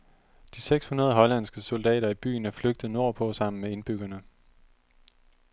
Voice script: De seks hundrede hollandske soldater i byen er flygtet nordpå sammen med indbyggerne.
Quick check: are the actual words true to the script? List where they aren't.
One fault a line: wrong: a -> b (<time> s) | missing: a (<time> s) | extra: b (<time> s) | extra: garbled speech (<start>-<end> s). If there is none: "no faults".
no faults